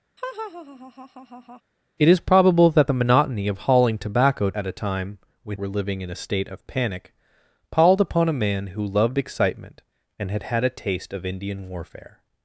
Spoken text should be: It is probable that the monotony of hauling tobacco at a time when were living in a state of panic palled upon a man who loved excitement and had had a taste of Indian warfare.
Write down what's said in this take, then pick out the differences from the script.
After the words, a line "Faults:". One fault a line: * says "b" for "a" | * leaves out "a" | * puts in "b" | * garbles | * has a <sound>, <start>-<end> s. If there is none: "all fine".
It is probable that the monotony of hauling tobacco at a time when were living in a state of panic palled upon a man who loved excitement and had had a taste of Indian warfare.
Faults:
* has a laugh, 0.2-1.6 s